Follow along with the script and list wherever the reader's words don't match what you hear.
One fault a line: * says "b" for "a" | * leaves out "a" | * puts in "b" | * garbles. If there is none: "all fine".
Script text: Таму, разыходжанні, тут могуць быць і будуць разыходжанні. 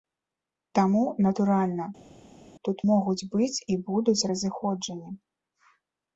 * says "натуральна" for "разыходжанні"